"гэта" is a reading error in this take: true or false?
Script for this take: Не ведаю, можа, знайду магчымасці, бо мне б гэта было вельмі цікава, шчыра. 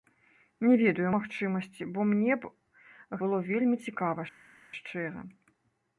true